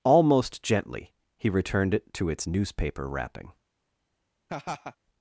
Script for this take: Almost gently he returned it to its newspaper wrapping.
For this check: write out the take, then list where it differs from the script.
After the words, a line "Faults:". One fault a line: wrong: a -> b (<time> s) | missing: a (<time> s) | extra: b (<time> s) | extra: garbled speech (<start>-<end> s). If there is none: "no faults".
Almost gently he returned it to its newspaper wrapping.
Faults:
no faults